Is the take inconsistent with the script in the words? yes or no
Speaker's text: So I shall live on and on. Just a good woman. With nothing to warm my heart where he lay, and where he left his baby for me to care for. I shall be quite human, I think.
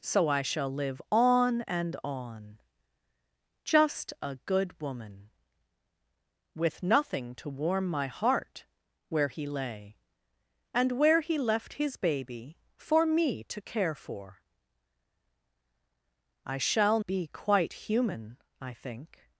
no